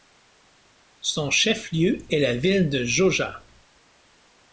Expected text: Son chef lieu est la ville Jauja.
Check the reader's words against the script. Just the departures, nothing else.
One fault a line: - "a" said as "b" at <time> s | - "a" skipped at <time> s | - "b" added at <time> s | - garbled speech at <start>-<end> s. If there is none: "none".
- "de" added at 2.7 s